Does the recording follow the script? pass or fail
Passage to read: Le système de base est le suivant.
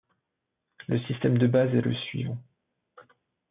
pass